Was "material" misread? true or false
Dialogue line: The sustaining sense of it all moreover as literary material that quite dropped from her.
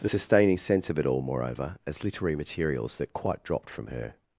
true